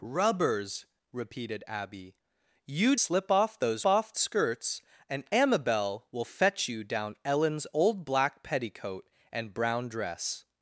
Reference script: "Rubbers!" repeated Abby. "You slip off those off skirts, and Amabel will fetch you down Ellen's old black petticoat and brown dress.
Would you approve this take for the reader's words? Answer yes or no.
yes